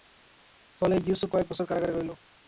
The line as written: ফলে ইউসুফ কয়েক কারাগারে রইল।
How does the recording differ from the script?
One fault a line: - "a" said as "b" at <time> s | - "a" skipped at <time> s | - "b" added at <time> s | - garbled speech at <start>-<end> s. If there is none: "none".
- "বছর" added at 1.5 s